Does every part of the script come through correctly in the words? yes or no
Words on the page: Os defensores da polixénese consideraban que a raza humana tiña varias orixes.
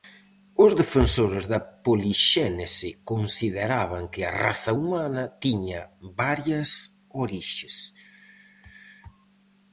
yes